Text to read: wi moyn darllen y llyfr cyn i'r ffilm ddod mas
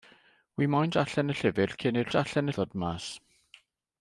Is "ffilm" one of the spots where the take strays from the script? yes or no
yes